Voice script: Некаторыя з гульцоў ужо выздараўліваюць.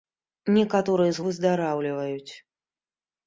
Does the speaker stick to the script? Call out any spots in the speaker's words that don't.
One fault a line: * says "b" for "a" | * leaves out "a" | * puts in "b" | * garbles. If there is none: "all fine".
* leaves out "гульцоў ужо"